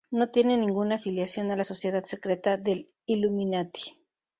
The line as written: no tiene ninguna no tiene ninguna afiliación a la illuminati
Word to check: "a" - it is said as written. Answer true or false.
false